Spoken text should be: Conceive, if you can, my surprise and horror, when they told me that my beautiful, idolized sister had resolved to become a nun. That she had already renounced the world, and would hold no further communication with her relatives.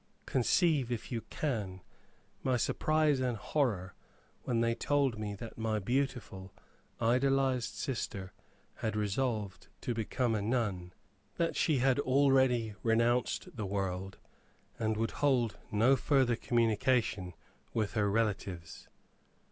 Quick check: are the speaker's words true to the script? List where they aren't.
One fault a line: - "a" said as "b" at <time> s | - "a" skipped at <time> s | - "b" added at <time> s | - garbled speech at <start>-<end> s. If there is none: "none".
none